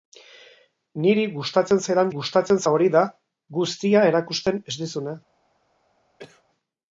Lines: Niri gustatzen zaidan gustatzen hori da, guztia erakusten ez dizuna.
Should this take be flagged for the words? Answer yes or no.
no